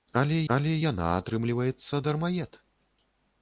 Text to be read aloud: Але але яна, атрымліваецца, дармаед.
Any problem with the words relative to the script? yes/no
no